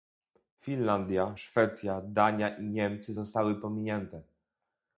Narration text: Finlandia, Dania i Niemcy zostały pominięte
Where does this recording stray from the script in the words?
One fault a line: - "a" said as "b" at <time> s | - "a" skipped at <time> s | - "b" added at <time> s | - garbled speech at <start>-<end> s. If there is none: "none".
- "Szwecja" added at 1.3 s